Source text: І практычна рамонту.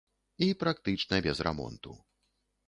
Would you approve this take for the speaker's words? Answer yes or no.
no